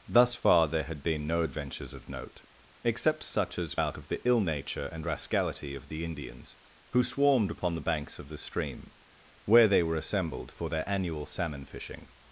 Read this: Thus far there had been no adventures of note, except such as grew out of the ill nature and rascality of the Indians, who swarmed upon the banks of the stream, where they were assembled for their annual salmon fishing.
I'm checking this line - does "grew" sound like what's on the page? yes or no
no